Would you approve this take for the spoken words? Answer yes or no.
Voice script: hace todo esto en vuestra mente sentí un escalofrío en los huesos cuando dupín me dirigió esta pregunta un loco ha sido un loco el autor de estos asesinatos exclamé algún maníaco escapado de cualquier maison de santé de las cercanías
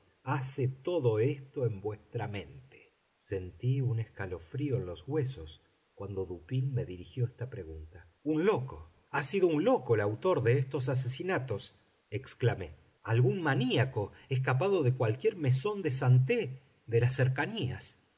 yes